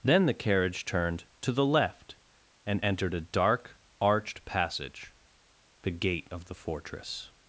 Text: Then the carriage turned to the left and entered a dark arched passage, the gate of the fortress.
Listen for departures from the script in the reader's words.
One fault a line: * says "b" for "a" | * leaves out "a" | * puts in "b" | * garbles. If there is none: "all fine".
all fine